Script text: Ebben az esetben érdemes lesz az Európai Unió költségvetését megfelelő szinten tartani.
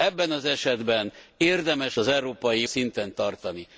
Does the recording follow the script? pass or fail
fail